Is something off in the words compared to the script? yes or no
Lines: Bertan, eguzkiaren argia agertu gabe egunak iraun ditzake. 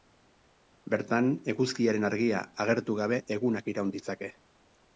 no